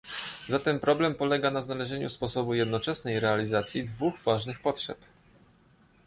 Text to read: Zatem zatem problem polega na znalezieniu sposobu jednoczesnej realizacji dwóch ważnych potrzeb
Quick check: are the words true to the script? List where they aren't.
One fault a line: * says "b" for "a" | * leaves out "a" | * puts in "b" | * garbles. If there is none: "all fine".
* leaves out "zatem"